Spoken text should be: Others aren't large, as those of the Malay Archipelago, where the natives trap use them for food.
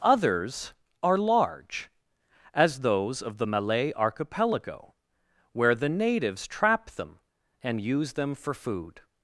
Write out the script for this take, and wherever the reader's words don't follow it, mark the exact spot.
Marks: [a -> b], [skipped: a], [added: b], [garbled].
Others [aren't -> are] large, as those of the Malay Archipelago, where the natives trap [added: them and] use them for food.